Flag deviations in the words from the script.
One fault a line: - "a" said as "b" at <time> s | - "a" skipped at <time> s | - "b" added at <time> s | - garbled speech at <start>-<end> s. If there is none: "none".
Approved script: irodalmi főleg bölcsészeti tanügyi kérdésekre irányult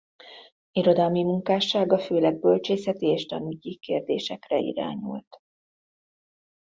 - "munkássága" added at 1.2 s
- "és" added at 3.1 s